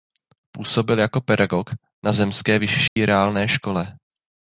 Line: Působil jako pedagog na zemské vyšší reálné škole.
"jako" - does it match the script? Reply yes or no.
yes